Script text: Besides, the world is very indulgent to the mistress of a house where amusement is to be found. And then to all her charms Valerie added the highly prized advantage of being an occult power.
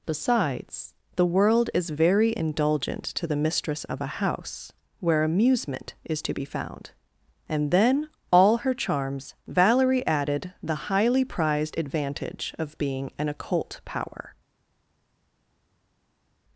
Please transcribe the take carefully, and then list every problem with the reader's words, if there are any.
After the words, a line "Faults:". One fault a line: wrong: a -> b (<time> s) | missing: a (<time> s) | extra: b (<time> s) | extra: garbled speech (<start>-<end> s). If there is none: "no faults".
Besides, the world is very indulgent to the mistress of a house where amusement is to be found. And then all her charms Valerie added the highly prized advantage of being an occult power.
Faults:
missing: to (8.1 s)